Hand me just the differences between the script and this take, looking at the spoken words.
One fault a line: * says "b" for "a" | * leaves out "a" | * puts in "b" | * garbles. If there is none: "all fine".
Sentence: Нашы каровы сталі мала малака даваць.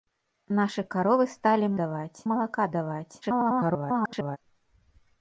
* says "даваць" for "мала"
* garbles